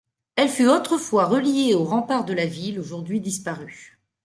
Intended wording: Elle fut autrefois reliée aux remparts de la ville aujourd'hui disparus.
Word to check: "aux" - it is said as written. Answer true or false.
true